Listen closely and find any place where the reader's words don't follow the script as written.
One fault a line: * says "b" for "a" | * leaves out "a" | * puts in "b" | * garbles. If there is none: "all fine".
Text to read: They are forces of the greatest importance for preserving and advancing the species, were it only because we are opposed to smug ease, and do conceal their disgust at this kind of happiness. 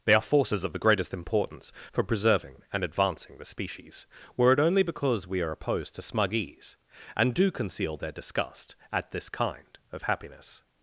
all fine